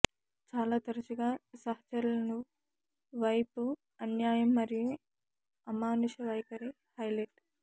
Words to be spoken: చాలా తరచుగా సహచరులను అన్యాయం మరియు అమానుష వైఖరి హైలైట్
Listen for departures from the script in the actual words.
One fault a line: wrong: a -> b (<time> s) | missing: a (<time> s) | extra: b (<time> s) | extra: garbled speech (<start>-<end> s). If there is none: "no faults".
extra: వైపు (3.1 s)